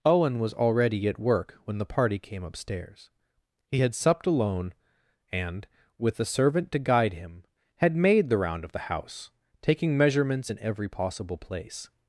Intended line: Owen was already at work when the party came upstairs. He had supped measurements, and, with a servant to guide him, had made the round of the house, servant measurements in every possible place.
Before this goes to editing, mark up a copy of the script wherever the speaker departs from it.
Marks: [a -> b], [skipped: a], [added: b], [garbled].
Owen was already at work when the party came upstairs. He had supped [measurements, -> alone] and, with a servant to guide him, had made the round of the house, [servant -> taking] measurements in every possible place.